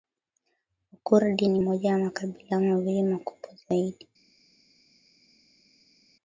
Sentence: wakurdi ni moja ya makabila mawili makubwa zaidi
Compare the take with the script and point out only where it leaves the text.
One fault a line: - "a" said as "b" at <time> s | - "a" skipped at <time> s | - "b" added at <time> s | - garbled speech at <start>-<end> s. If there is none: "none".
none